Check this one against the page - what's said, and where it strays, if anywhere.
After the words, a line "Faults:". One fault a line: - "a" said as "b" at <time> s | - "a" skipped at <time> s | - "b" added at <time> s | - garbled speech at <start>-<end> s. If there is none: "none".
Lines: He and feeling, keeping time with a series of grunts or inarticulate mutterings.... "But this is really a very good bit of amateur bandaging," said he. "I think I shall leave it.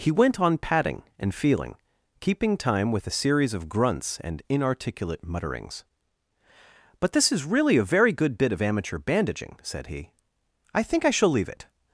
He went on patting and feeling, keeping time with a series of grunts and inarticulate mutterings.... "But this is really a very good bit of amateur bandaging," said he. "I think I shall leave it.
Faults:
- "went on patting" added at 0.1 s
- "or" said as "and" at 4.2 s